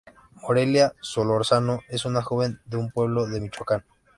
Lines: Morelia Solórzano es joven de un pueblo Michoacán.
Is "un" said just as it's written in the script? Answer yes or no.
yes